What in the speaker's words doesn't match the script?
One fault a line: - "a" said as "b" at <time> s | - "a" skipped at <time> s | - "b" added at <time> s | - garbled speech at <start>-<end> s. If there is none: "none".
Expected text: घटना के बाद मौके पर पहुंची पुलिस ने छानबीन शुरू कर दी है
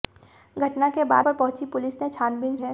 - "मौके" skipped at 1.2 s
- "शुरू कर दी" skipped at 2.6 s